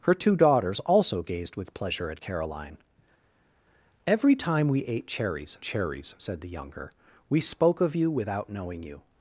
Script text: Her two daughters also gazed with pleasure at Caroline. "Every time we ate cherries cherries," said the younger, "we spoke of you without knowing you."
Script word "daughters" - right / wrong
right